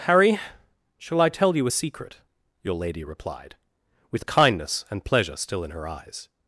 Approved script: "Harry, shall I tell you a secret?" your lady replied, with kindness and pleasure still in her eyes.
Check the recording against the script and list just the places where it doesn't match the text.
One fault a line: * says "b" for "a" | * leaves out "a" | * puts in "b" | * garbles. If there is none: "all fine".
all fine